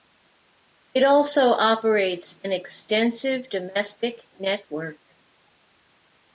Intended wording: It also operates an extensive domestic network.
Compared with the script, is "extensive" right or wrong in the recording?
right